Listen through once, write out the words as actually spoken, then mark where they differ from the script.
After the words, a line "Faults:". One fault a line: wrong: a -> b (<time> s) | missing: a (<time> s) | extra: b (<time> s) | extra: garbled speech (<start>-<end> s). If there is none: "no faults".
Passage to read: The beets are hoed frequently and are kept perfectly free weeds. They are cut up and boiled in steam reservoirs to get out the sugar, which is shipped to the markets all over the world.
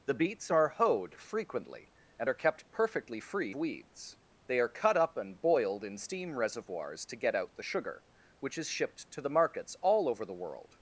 The beets are hoed frequently and are kept perfectly free weeds. They are cut up and boiled in steam reservoirs to get out the sugar, which is shipped to the markets all over the world.
Faults:
no faults